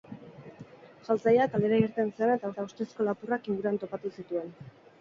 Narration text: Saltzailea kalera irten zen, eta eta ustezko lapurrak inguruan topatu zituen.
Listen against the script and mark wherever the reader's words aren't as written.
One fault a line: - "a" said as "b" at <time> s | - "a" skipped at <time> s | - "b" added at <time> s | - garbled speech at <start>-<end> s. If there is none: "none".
none